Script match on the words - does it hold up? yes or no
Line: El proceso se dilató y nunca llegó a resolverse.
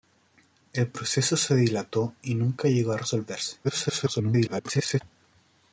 no